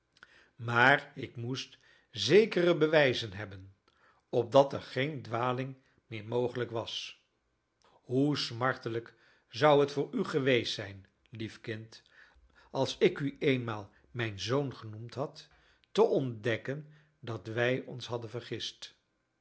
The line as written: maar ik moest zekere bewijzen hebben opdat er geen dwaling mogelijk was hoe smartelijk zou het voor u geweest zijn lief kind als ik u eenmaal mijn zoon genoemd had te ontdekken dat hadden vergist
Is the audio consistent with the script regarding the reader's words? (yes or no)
no